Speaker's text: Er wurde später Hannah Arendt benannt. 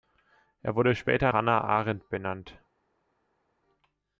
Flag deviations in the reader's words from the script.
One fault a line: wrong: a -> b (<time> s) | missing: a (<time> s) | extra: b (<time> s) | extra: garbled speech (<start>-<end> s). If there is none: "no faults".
no faults